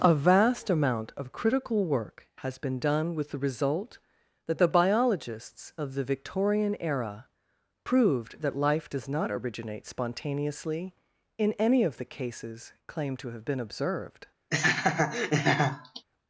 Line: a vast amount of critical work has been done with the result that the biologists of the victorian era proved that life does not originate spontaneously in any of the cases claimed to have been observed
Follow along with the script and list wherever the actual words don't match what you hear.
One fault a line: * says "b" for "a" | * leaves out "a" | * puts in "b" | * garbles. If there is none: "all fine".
all fine